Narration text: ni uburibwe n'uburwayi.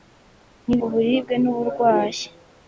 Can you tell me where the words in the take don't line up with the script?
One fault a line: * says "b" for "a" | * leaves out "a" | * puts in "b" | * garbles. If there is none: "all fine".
all fine